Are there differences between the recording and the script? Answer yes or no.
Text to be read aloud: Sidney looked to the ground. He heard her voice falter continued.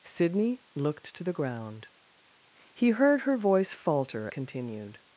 no